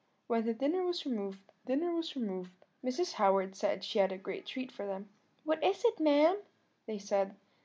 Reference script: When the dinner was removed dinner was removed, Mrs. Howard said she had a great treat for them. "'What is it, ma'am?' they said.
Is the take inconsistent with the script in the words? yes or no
no